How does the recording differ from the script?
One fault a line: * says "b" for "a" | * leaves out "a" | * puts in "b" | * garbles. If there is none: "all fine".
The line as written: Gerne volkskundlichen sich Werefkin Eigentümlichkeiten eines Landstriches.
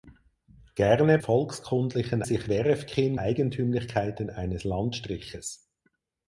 all fine